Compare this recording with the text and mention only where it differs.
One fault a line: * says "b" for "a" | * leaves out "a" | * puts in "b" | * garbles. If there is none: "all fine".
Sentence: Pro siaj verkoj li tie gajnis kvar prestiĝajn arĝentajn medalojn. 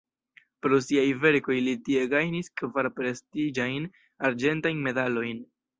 all fine